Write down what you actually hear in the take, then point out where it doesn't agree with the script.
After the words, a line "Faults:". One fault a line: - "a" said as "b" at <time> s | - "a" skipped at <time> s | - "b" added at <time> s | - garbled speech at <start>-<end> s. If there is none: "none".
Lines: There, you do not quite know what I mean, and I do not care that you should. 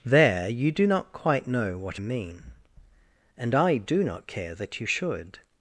There, you do not quite know what mean, and I do not care that you should.
Faults:
- "I" skipped at 2.0 s